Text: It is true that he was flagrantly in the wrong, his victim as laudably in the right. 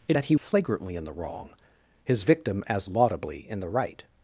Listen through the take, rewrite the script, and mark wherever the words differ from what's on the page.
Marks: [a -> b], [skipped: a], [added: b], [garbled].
It [skipped: is true] that he [skipped: was] flagrantly in the wrong, his victim as laudably in the right.